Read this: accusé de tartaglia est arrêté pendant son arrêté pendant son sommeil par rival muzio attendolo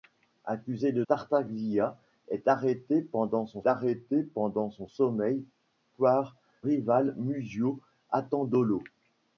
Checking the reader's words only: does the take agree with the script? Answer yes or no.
yes